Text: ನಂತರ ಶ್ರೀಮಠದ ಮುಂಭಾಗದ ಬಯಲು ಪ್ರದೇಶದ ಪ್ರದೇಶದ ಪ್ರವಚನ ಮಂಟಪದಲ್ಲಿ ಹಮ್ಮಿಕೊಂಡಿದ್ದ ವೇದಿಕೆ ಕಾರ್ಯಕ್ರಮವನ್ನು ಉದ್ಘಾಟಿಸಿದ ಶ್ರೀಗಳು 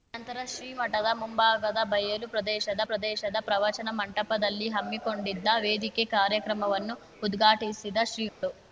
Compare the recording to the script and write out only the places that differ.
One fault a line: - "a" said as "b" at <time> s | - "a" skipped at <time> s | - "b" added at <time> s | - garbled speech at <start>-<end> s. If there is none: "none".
none